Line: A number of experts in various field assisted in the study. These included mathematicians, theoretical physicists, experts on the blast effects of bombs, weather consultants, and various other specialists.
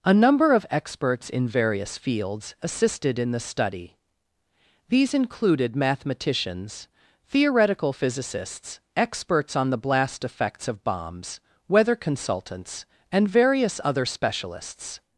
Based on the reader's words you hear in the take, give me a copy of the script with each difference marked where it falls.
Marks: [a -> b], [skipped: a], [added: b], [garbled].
A number of experts in various [field -> fields] assisted in the study. These included mathematicians, theoretical physicists, experts on the blast effects of bombs, weather consultants, and various other specialists.